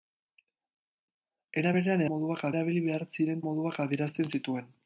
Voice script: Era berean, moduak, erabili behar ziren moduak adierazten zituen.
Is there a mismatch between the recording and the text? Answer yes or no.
no